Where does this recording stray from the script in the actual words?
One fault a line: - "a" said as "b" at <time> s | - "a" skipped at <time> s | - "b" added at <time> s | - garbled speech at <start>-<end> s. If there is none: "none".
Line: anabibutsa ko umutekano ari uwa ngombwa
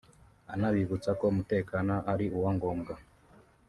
none